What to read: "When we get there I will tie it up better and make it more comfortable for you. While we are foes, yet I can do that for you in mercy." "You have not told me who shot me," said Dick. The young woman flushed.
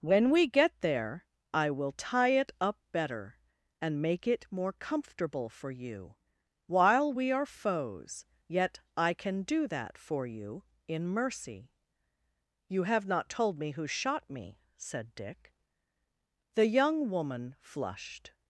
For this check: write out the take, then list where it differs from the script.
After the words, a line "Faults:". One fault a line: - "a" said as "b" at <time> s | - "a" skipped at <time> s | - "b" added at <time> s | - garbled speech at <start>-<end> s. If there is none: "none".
"When we get there I will tie it up better and make it more comfortable for you. While we are foes, yet I can do that for you in mercy." "You have not told me who shot me," said Dick. The young woman flushed.
Faults:
none